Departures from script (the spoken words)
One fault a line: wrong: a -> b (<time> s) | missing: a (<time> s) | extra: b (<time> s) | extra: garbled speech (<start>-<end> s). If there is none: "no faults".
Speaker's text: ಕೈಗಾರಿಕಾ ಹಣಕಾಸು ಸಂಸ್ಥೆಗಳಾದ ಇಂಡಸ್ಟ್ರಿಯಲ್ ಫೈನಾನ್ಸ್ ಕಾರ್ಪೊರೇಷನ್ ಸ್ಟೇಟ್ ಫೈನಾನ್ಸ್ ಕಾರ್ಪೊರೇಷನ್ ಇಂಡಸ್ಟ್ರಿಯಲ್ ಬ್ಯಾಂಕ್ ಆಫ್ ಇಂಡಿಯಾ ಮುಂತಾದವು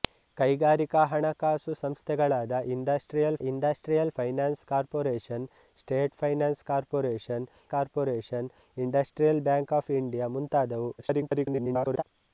extra: ಇಂಡಸ್ಟ್ರಿಯಲ್ (3.4 s)
extra: ಕಾರ್ಪೊರೇಷನ್ (7.7 s)
extra: garbled speech (11.0-12.0 s)